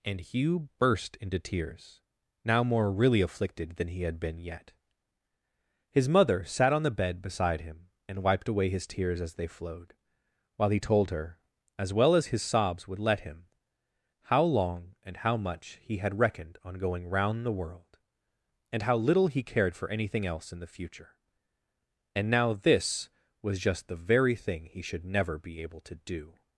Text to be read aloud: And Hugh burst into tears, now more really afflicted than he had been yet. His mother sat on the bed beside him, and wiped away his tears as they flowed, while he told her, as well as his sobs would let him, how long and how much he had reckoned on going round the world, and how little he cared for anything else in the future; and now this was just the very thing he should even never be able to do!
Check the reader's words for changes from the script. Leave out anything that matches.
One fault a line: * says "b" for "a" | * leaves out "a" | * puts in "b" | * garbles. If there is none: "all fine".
* leaves out "even"